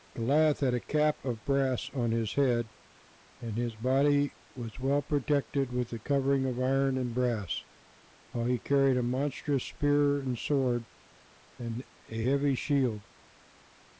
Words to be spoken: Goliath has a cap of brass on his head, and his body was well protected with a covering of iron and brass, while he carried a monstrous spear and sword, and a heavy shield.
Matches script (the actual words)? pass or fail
fail